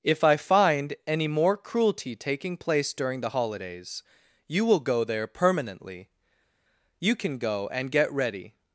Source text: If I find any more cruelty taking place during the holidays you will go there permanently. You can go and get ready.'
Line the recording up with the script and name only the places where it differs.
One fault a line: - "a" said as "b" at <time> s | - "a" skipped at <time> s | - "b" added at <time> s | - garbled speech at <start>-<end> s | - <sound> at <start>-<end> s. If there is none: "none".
none